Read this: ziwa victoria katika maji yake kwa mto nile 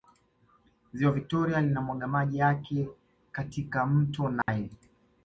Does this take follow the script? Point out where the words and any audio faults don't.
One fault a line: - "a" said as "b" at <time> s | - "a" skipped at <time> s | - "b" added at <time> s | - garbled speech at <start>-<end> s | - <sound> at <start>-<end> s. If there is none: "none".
- "katika" said as "linamwaga" at 1.6 s
- "kwa" said as "katika" at 3.3 s
- dropout at 4.4-4.5 s